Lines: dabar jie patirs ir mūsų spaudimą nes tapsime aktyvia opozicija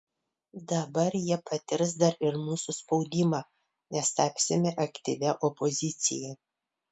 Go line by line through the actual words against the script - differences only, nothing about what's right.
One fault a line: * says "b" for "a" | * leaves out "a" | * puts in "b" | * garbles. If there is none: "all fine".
* puts in "dar"